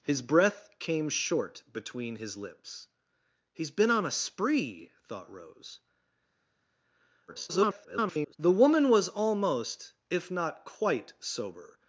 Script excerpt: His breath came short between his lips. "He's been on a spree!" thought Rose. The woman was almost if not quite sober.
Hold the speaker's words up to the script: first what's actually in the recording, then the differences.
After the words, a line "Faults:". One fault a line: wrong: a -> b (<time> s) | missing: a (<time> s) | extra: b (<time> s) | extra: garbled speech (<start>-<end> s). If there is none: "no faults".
His breath came short between his lips. "He's been on a spree!" thought Rose. [garbled] The woman was almost if not quite sober.
Faults:
extra: garbled speech (7.3-8.4 s)